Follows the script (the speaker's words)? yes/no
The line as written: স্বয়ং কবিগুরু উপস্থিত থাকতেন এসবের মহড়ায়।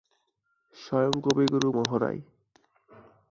no